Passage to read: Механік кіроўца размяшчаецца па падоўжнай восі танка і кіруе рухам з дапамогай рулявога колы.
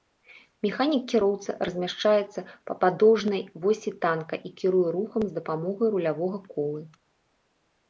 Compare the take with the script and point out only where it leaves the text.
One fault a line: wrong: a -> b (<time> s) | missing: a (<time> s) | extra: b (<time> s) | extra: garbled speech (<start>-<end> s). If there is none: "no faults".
no faults